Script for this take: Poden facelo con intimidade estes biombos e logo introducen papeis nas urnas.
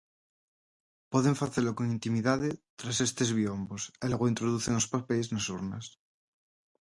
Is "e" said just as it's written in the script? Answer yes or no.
yes